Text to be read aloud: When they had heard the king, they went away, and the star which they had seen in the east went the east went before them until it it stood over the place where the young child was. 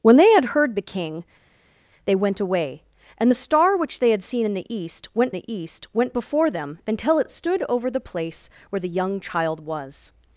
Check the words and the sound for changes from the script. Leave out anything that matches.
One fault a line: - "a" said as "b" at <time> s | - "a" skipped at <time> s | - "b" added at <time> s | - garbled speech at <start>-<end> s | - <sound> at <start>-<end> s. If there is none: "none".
none